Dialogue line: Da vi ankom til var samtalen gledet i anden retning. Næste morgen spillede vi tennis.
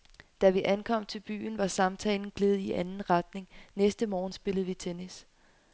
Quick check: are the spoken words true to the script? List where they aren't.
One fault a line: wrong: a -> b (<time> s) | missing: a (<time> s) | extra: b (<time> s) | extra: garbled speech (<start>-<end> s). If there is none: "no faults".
extra: byen (1.2 s)